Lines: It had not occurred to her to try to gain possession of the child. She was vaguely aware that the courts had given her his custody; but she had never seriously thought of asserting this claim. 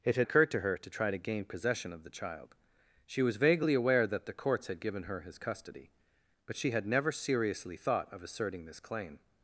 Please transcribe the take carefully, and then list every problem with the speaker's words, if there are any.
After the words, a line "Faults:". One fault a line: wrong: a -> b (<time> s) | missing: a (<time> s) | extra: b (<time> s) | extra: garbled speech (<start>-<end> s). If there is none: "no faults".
It had occurred to her to try to gain possession of the child. She was vaguely aware that the courts had given her his custody; but she had never seriously thought of asserting this claim.
Faults:
missing: not (0.3 s)